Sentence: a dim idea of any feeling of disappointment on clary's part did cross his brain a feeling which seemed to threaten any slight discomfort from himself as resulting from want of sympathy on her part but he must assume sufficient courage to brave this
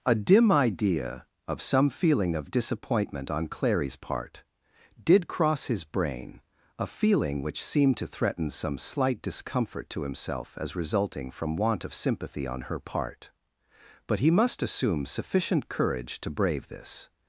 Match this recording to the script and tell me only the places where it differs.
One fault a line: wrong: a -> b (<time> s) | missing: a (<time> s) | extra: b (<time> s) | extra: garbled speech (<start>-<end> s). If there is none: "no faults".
wrong: any -> some (1.6 s)
wrong: any -> some (8.5 s)
wrong: from -> to (9.9 s)